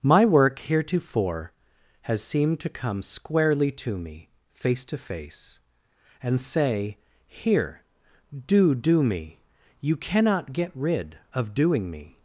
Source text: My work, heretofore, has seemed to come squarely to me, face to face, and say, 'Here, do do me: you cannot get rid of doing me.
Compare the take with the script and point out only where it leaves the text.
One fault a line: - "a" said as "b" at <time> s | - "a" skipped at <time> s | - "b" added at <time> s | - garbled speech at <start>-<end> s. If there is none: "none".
none